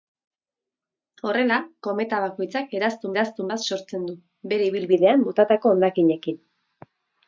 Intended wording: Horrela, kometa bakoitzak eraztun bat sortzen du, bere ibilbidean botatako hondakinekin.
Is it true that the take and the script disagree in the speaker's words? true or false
true